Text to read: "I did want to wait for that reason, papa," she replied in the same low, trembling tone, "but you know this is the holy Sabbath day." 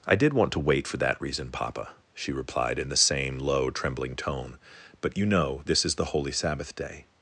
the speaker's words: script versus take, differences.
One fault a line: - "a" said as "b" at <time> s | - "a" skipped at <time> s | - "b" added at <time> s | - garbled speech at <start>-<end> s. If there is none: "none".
none